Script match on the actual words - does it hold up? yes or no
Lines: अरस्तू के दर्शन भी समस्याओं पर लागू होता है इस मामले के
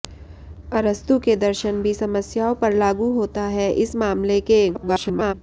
no